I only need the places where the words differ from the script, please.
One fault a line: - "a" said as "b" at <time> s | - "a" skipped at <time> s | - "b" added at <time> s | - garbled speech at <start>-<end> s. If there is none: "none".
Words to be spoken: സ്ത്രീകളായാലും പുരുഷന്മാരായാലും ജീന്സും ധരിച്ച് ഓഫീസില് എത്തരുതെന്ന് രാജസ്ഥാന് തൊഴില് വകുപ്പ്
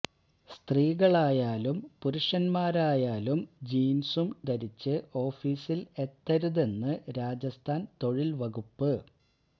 none